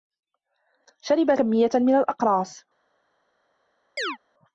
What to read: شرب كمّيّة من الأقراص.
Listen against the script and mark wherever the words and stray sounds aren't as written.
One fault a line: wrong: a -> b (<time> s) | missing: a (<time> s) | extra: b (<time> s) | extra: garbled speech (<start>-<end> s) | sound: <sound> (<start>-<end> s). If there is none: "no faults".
sound: chirp (4.0-4.2 s)